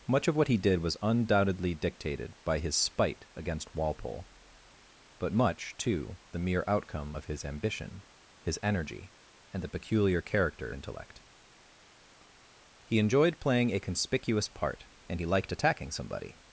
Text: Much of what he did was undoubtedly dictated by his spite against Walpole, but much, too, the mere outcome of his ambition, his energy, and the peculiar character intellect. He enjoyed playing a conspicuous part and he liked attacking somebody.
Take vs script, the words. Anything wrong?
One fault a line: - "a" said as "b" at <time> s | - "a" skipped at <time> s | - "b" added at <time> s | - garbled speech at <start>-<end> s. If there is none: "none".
none